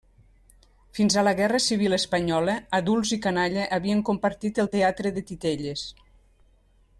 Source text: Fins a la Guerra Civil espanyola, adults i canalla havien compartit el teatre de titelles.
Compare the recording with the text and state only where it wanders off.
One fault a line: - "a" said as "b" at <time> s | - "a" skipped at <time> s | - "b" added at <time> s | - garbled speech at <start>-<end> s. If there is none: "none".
none